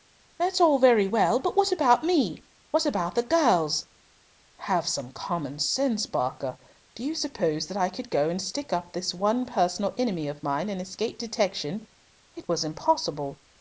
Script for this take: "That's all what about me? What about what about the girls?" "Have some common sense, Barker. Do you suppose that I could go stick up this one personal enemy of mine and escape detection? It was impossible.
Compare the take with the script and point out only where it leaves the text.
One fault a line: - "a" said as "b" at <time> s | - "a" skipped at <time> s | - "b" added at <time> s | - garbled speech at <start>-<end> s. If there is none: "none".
- "what about me" said as "very well But" at 0.8 s
- "me" added at 2.0 s
- "and" added at 8.3 s